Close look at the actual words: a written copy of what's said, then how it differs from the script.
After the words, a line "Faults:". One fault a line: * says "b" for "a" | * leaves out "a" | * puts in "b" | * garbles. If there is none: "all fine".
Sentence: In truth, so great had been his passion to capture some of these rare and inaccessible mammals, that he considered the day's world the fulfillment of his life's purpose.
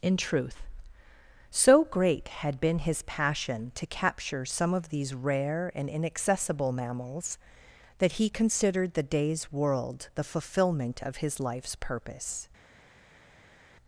In truth, so great had been his passion to capture some of these rare and inaccessible mammals, that he considered the day's world the fulfillment of his life's purpose.
Faults:
all fine